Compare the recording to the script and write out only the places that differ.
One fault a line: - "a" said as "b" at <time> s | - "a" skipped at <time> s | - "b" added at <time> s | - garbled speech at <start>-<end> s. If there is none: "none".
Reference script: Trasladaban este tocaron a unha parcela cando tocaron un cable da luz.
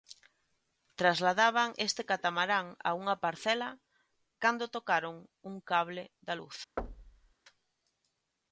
- "tocaron" said as "catamarán" at 2.1 s